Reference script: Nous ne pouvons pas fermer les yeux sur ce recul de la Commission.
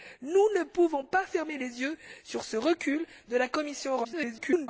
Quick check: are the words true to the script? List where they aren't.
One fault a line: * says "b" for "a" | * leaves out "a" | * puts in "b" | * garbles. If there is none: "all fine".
* garbles